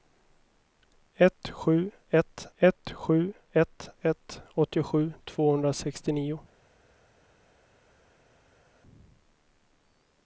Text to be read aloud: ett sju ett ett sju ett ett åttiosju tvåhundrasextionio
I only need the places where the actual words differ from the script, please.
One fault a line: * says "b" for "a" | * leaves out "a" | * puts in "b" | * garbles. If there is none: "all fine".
all fine